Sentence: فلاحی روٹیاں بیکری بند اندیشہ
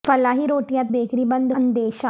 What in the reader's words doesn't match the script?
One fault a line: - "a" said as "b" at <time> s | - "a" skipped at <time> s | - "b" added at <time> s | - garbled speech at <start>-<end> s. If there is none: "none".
none